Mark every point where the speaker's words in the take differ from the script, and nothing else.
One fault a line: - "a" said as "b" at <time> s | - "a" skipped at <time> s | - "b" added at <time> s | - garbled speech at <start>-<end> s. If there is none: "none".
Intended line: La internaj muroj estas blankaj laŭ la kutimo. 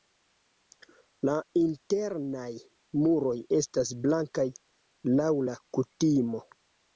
none